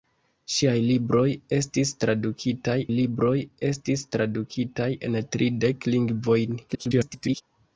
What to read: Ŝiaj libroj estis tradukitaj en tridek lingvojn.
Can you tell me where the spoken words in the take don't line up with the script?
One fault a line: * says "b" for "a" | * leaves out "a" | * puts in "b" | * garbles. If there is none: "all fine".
* puts in "libroj estis tradukitaj"
* garbles